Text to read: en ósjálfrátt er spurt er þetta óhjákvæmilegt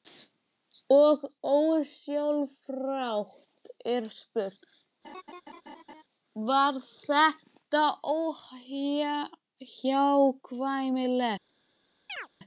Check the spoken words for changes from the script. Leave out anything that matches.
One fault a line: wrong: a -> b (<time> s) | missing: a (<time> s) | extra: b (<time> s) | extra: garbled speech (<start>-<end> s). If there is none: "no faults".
wrong: en -> og (1.0 s)
wrong: er -> var (6.5 s)